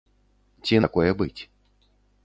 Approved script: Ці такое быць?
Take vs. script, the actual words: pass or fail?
pass